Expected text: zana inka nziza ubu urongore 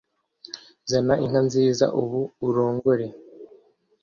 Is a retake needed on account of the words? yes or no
no